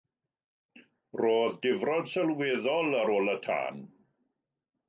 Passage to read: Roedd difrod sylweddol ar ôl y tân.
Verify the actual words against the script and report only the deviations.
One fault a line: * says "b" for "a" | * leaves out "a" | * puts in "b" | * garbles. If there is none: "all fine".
all fine